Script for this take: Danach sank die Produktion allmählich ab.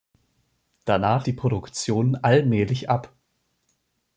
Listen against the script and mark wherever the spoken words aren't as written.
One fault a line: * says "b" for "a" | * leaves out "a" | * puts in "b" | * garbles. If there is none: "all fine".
* leaves out "sank"